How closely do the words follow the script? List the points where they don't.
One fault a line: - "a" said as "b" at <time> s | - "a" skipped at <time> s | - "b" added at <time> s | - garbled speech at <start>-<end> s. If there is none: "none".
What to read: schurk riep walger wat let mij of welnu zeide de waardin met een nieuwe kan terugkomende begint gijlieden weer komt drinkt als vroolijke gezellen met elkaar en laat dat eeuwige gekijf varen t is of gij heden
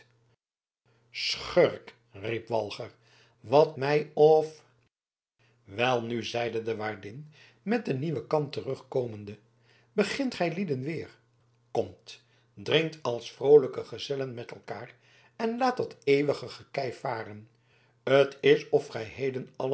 - "let" skipped at 3.8 s